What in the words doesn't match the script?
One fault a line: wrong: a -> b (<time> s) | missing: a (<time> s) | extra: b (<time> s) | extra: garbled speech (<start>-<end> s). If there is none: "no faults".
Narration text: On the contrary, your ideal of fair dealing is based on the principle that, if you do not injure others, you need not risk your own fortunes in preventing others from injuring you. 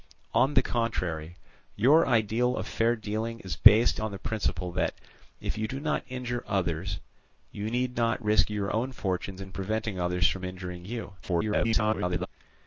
extra: garbled speech (11.2-12.3 s)